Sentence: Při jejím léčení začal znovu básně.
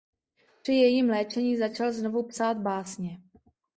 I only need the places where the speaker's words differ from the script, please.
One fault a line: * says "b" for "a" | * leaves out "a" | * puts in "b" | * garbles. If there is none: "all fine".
* puts in "psát"